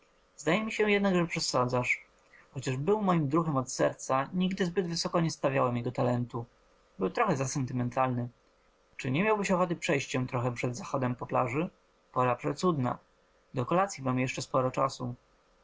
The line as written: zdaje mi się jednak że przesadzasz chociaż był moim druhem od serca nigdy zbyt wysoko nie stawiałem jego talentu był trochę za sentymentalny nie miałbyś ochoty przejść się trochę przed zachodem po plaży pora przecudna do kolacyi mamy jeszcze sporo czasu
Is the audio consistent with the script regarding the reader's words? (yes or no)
no